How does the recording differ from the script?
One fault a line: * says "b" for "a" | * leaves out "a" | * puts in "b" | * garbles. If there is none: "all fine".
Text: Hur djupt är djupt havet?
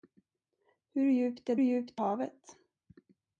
all fine